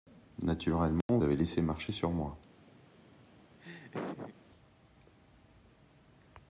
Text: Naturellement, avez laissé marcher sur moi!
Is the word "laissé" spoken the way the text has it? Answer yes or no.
yes